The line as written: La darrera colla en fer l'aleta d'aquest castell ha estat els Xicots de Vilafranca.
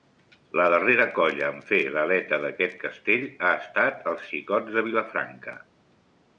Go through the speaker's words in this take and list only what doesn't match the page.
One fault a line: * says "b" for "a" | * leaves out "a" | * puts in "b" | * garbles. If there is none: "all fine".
all fine